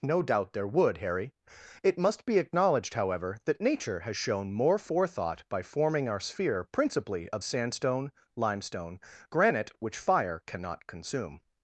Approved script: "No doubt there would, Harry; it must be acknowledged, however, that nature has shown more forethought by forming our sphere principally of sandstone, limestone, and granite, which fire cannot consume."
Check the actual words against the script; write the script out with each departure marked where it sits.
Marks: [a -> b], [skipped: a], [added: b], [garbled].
"No doubt there would, Harry; it must be acknowledged, however, that nature has shown more forethought by forming our sphere principally of sandstone, limestone, [skipped: and] granite, which fire cannot consume."